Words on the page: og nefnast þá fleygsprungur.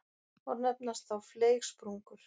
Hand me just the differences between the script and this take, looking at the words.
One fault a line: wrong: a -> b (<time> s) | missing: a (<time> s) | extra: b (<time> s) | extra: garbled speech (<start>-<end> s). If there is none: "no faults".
no faults